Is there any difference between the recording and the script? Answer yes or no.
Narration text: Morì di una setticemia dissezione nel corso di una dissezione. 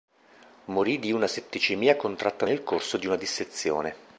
yes